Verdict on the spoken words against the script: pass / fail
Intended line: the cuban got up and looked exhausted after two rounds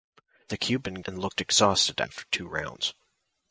fail